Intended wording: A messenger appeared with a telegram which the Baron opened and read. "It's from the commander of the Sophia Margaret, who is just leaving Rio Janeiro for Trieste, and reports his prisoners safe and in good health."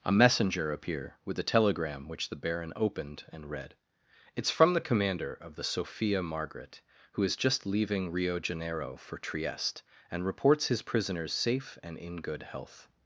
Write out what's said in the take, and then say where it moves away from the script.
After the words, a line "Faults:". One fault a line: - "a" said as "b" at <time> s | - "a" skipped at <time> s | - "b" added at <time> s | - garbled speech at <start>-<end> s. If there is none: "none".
A messenger appear with a telegram which the Baron opened and read. "It's from the commander of the Sophia Margaret, who is just leaving Rio Janeiro for Trieste, and reports his prisoners safe and in good health."
Faults:
- "appeared" said as "appear" at 0.7 s